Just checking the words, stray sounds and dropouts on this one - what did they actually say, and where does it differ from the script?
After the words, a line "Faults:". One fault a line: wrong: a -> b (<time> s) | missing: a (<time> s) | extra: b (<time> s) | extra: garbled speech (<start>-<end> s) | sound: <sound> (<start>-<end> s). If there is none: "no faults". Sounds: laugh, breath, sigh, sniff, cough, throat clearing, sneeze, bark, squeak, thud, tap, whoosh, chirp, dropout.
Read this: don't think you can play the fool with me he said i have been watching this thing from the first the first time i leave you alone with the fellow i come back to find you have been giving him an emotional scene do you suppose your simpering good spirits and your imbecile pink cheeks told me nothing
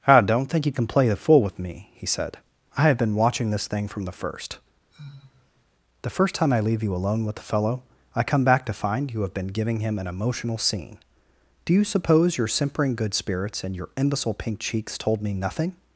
i don't think you can play the fool with me he said i have been watching this thing from the first the first time i leave you alone with the fellow i come back to find you have been giving him an emotional scene do you suppose your simpering good spirits and your imbecile pink cheeks told me nothing
Faults:
extra: i (0.1 s)
sound: sigh (4.9-5.6 s)